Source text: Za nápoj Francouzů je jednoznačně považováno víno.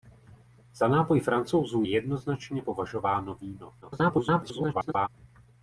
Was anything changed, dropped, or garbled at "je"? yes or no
yes